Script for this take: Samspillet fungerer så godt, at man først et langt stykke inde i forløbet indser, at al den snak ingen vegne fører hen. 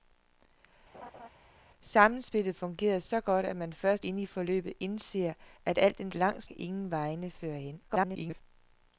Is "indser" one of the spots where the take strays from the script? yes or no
no